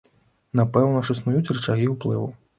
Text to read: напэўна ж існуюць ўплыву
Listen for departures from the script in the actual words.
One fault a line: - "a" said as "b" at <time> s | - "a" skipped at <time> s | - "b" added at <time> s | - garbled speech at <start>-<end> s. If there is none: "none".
- "рычагі" added at 1.6 s